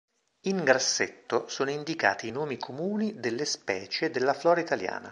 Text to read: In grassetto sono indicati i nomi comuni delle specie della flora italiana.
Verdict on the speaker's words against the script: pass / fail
pass